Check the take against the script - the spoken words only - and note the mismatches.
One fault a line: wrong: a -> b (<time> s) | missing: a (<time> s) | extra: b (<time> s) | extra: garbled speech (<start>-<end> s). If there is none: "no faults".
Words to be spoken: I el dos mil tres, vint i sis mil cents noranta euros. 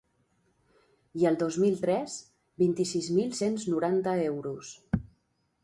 no faults